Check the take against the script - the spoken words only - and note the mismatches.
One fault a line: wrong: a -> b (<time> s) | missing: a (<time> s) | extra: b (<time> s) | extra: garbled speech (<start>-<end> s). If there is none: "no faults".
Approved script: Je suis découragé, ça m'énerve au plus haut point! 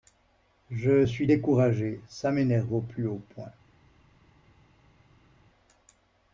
no faults